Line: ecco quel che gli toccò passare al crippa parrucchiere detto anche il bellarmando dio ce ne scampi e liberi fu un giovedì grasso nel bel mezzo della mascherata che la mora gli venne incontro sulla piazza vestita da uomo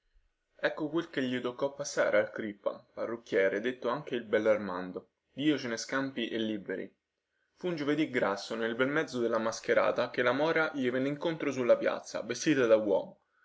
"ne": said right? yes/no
yes